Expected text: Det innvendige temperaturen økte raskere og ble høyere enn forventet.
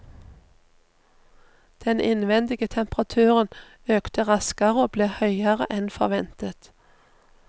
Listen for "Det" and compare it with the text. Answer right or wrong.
wrong